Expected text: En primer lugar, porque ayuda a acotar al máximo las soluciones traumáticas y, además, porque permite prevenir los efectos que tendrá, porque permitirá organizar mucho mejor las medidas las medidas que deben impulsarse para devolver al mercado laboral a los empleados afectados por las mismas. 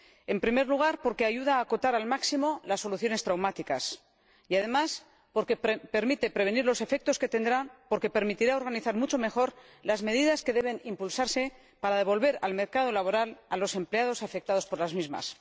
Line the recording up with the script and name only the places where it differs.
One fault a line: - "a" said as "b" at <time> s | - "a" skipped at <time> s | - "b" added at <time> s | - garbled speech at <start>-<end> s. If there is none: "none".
- "las medidas" skipped at 10.4 s